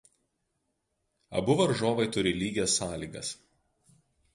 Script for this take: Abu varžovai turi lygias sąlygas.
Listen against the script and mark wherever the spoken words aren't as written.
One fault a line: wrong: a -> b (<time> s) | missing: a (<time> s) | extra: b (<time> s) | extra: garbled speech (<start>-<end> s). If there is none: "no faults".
no faults